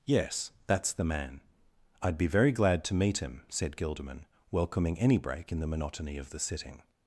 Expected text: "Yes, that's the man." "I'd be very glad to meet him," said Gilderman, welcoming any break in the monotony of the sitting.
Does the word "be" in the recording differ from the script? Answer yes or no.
no